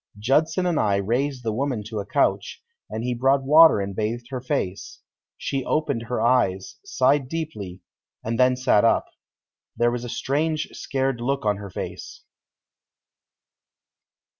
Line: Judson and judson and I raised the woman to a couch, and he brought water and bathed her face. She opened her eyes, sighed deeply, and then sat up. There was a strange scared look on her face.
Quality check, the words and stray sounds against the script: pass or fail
fail